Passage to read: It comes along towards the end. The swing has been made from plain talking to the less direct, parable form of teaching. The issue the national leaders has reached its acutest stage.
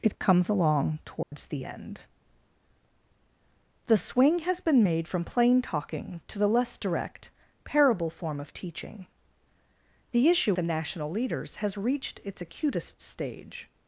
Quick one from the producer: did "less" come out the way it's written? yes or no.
yes